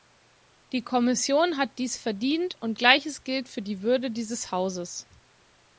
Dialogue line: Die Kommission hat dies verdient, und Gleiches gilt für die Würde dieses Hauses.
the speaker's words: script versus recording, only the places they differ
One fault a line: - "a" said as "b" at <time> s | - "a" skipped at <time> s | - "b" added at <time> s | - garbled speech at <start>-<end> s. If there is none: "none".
none